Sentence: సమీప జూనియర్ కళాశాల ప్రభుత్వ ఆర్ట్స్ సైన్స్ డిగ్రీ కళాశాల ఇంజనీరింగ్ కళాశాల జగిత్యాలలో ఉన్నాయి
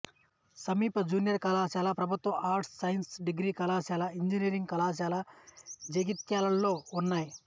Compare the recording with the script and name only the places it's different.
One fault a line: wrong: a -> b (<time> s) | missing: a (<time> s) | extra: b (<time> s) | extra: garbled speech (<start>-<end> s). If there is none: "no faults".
no faults